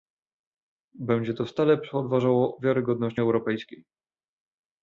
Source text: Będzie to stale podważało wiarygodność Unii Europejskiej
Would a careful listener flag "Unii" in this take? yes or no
yes